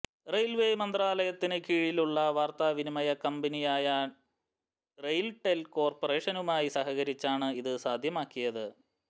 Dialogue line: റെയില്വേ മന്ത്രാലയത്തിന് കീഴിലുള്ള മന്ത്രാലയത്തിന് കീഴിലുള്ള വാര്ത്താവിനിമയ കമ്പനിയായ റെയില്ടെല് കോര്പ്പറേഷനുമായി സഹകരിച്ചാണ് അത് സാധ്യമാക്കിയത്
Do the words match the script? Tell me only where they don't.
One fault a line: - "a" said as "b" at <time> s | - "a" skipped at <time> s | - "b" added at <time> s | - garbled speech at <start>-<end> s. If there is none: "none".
- "മന്ത്രാലയത്തിന് കീഴിലുള്ള" skipped at 2.2 s
- "അത്" said as "ഇത്" at 7.6 s